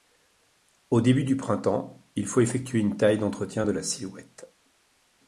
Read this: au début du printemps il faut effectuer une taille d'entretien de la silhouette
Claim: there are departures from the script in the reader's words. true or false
false